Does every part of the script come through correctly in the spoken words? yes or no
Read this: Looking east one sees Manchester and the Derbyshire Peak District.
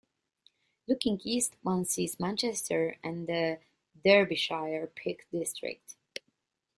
yes